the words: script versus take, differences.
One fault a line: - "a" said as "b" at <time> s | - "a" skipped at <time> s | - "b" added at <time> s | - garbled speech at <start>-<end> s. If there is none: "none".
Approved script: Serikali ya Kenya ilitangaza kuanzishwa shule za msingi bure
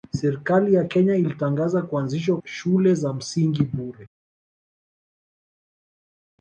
none